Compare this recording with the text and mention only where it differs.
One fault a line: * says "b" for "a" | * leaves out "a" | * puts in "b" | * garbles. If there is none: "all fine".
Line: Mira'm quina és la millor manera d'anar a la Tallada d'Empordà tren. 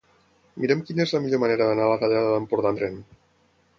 all fine